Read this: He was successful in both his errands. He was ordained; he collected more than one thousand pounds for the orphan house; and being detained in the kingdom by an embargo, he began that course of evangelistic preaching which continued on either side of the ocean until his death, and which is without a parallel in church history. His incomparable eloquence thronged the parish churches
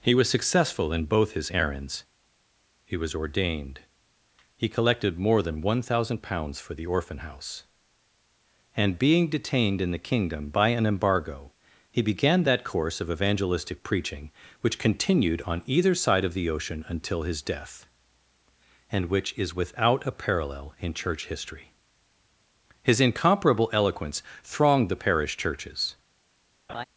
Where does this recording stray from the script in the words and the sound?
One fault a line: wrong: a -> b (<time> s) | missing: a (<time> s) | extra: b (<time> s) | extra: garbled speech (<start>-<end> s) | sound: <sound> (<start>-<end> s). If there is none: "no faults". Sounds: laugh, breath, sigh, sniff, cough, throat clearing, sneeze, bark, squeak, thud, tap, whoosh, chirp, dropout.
sound: laugh (26.7-26.8 s)